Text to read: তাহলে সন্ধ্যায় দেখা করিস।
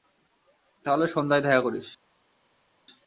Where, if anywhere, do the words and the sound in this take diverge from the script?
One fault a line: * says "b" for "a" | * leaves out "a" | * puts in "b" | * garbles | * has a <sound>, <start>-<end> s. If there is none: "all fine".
all fine